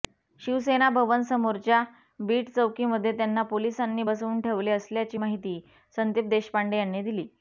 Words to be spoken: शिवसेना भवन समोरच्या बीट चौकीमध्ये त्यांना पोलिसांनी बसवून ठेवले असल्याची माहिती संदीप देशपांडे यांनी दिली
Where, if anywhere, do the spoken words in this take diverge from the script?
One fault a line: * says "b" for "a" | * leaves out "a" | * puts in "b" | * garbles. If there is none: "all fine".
all fine